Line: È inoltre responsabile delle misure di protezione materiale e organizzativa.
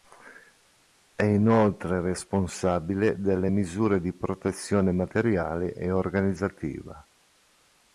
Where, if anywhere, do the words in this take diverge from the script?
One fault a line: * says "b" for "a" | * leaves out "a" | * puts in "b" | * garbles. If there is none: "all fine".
all fine